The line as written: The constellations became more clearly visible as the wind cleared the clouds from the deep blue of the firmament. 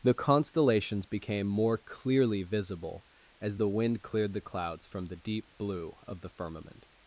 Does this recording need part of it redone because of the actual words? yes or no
no